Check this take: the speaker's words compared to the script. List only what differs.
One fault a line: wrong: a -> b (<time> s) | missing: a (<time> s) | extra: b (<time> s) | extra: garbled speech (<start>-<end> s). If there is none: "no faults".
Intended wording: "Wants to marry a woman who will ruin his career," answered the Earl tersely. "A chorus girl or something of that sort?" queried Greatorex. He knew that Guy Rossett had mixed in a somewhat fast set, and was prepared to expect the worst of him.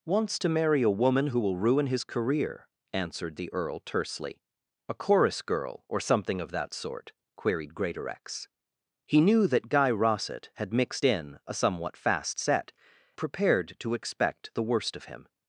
missing: and was (12.7 s)